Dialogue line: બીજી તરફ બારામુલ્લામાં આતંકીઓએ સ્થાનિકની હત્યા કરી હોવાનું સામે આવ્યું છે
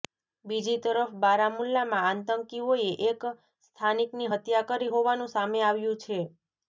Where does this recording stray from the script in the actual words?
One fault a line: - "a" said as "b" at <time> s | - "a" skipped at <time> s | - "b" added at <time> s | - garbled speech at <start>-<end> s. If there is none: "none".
- "એક" added at 3.1 s